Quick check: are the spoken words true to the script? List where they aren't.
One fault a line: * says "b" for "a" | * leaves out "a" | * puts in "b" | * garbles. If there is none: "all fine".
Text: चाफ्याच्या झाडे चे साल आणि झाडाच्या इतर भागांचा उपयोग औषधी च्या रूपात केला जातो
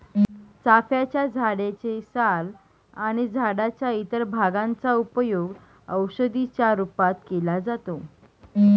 all fine